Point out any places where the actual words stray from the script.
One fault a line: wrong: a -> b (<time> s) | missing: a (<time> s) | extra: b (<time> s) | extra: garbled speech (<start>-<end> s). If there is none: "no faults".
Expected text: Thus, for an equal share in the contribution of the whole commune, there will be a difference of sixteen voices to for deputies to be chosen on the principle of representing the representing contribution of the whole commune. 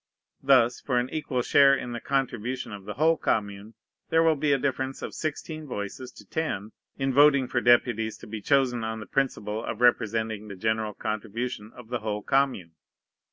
extra: ten in voting (6.2 s)
wrong: representing -> general (10.6 s)